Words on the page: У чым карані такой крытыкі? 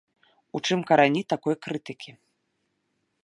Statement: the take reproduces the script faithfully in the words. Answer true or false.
true